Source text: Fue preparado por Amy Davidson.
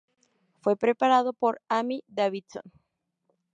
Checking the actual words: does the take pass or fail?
pass